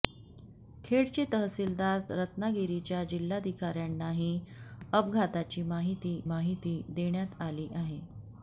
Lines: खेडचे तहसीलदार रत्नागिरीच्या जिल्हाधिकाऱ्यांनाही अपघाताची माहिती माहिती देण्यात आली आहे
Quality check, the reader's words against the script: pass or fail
pass